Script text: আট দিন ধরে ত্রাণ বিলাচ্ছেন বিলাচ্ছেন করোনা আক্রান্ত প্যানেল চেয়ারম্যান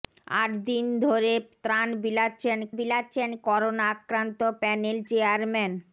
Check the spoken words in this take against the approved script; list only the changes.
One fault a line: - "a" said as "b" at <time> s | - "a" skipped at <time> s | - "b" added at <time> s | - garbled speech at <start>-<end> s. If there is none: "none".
none